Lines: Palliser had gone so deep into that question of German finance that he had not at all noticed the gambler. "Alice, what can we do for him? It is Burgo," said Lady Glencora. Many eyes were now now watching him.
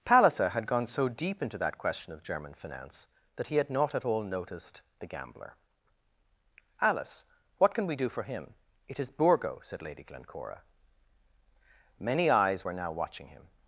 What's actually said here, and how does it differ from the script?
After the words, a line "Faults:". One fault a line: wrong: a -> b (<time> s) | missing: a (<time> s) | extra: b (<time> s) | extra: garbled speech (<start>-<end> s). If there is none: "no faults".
Palliser had gone so deep into that question of German finance that he had not at all noticed the gambler. "Alice, what can we do for him? It is Burgo," said Lady Glencora. Many eyes were now watching him.
Faults:
missing: now (12.9 s)